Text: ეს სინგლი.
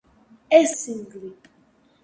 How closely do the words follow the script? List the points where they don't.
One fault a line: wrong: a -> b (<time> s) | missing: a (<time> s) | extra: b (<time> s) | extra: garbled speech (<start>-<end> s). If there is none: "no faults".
no faults